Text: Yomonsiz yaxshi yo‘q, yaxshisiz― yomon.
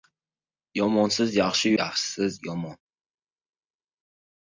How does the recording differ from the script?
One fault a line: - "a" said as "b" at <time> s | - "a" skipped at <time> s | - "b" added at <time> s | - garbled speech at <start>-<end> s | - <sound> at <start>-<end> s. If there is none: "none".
- "yo‘q" skipped at 1.8 s